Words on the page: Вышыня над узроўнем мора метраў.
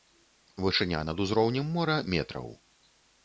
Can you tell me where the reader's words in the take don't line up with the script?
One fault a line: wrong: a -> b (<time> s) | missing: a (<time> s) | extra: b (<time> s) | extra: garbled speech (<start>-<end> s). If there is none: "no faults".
no faults